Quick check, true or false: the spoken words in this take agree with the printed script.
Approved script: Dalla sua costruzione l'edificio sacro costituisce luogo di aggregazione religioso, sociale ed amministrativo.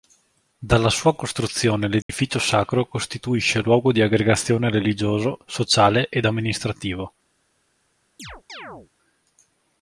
true